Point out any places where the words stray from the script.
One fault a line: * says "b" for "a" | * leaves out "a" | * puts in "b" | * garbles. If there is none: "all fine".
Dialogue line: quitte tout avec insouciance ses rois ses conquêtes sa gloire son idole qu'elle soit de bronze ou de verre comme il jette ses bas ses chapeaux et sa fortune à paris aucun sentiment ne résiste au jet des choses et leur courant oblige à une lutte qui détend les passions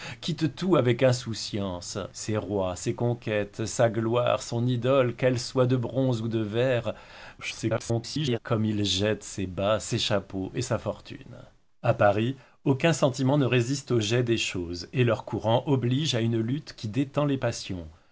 * garbles